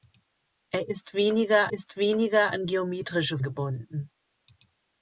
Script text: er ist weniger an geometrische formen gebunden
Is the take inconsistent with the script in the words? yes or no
yes